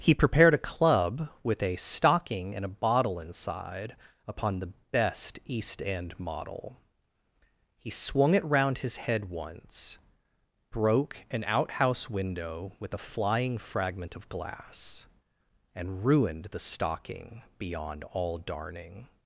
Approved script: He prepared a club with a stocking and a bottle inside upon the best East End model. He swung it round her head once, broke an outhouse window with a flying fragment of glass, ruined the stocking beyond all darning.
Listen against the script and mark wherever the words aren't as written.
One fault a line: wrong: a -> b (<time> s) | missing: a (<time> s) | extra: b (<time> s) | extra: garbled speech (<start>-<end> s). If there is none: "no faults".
wrong: her -> his (8.8 s)
extra: and (15.8 s)